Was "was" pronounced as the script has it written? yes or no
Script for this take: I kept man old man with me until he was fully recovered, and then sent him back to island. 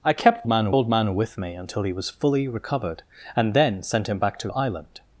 yes